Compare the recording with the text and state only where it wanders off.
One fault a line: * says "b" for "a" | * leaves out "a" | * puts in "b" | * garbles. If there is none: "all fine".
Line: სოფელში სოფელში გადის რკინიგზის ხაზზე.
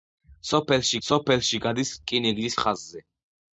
all fine